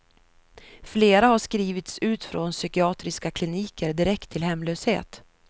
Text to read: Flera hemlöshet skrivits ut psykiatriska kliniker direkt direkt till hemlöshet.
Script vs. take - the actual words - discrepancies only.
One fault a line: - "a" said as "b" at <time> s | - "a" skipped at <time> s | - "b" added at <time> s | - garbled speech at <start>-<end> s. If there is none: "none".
- "hemlöshet" said as "har" at 1.3 s
- "från" added at 2.2 s
- "direkt" skipped at 4.3 s